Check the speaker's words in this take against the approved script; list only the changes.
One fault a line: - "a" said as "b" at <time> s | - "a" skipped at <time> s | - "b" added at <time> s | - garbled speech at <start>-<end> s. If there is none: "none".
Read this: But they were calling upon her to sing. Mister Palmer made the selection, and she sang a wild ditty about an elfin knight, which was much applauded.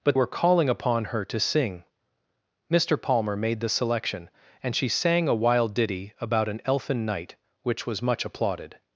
- "they" skipped at 0.2 s